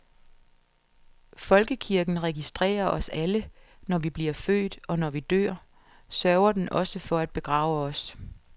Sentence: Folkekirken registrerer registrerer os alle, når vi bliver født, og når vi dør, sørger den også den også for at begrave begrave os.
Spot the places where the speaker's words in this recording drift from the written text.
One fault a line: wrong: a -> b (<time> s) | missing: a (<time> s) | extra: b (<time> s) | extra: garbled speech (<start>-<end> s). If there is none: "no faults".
missing: registrerer (2.9 s)
missing: den også (7.0 s)
missing: begrave (7.8 s)